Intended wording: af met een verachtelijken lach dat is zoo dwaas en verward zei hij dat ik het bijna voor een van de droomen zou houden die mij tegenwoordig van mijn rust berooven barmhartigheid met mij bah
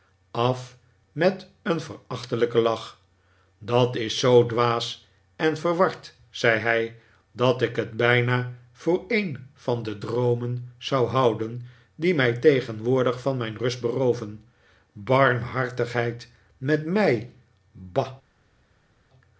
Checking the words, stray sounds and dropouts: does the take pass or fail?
pass